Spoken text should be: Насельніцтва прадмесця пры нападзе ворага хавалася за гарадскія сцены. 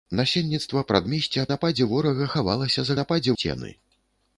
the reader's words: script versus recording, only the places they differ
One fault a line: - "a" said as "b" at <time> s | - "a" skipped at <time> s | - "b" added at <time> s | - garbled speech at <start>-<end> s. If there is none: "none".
- "пры" skipped at 1.4 s
- "гарадскія" said as "нападзе" at 3.0 s